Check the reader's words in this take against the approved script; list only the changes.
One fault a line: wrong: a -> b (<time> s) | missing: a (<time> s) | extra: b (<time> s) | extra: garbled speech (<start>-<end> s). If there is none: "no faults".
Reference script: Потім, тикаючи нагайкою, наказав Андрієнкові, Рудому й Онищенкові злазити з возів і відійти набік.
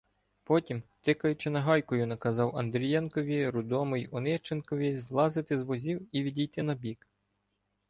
no faults